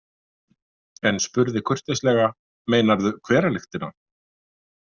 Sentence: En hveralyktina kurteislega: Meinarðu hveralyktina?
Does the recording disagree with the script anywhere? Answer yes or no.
yes